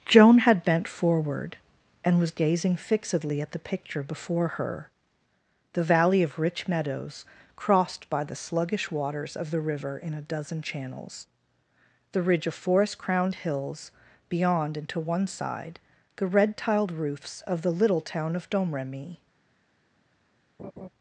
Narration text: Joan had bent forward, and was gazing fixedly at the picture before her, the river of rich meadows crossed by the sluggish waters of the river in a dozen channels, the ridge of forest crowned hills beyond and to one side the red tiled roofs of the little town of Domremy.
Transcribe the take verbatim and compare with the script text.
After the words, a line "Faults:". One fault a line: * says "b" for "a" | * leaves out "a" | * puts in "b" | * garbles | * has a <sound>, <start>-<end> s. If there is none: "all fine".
Joan had bent forward, and was gazing fixedly at the picture before her, the valley of rich meadows crossed by the sluggish waters of the river in a dozen channels, the ridge of forest crowned hills beyond and to one side the red tiled roofs of the little town of Domremy.
Faults:
* says "valley" for "river"
* has a laugh, 20.6-20.9 s